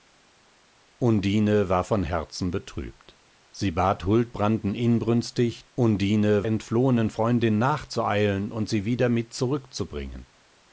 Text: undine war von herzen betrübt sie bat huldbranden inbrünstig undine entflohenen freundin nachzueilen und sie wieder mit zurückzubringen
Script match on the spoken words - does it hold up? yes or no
yes